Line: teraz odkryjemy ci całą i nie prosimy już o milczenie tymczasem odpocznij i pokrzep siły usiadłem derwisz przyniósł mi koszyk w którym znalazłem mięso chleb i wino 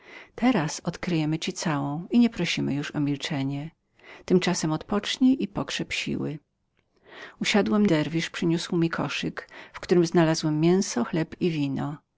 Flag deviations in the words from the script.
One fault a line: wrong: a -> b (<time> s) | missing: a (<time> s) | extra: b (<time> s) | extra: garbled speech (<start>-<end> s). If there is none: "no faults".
no faults